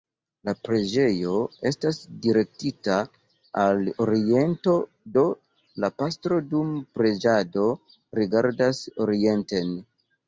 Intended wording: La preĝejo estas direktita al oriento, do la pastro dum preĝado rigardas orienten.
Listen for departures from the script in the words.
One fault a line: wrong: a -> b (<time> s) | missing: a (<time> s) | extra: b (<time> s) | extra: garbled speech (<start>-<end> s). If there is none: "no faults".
no faults